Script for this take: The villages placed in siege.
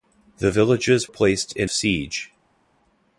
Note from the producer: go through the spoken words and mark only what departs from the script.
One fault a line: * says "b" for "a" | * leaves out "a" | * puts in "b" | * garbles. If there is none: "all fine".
all fine